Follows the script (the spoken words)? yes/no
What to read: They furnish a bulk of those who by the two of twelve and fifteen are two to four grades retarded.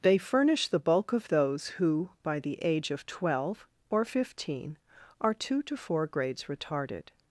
no